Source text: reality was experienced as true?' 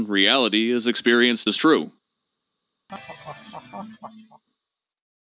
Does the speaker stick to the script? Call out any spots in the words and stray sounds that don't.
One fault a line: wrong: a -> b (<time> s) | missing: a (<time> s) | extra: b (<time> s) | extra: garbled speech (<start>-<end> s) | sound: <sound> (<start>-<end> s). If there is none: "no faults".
wrong: was -> is (0.7 s)
sound: laugh (2.9-4.4 s)